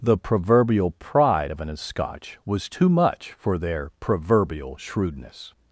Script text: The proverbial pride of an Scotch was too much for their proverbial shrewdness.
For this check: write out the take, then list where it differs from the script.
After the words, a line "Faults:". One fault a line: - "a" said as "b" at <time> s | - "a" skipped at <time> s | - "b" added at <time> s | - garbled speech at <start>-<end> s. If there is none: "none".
The proverbial pride of an Scotch was too much for their proverbial shrewdness.
Faults:
none